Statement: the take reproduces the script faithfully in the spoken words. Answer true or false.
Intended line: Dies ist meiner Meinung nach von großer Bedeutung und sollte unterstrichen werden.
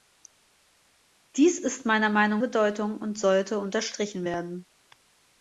false